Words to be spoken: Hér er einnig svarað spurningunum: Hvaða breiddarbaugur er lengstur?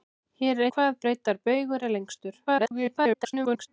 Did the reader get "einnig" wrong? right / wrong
wrong